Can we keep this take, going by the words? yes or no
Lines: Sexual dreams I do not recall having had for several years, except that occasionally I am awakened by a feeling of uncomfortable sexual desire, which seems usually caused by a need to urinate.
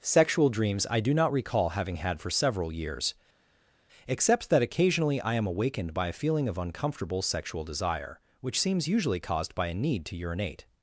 yes